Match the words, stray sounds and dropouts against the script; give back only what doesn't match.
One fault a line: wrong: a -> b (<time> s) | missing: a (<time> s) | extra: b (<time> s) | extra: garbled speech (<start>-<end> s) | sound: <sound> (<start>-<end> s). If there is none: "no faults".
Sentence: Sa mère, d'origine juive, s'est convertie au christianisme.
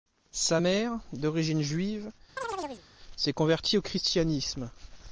sound: chirp (2.4-2.8 s)